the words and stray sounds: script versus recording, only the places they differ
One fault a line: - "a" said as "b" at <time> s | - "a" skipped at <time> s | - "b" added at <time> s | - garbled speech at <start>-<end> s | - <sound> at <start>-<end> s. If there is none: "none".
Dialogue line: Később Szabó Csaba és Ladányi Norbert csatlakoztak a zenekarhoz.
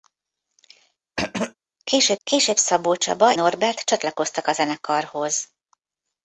- throat clearing at 1.2-1.5 s
- "később" added at 2.2 s
- "és Ladányi" skipped at 3.4 s